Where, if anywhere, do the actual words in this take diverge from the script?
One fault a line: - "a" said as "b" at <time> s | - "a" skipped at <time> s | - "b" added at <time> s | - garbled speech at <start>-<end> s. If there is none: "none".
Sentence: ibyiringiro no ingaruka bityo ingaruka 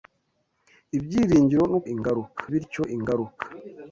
none